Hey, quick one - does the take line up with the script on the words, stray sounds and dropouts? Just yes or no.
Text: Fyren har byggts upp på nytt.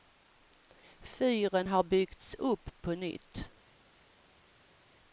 yes